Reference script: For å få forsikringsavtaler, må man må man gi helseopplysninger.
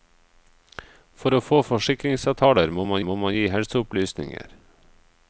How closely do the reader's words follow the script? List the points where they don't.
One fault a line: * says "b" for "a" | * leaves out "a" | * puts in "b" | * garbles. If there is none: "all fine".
all fine